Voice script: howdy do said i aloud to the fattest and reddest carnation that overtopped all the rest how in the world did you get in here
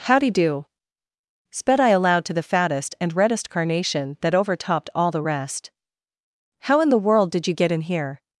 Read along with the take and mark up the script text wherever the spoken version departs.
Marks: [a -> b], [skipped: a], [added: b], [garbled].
howdy do [said -> sped] i aloud to the fattest and reddest carnation that overtopped all the rest how in the world did you get in here